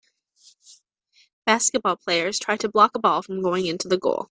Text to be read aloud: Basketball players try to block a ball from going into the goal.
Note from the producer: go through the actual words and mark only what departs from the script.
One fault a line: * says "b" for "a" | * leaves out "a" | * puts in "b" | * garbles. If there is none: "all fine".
all fine